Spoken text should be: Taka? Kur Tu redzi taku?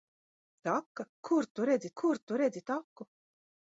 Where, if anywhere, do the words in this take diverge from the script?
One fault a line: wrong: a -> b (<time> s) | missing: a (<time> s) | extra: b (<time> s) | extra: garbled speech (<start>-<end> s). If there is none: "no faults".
extra: kur Tu redzi (2.0 s)